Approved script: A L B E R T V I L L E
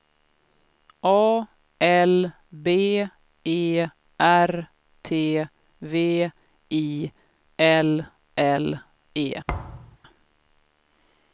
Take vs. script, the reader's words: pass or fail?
pass